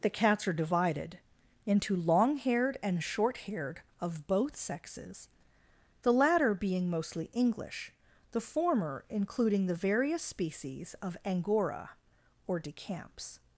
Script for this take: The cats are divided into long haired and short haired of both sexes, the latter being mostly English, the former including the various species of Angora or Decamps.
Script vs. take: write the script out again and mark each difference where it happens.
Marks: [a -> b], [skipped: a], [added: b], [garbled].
The cats are divided into long haired and short haired of both sexes, the latter being mostly English, the former including the various species of Angora or Decamps.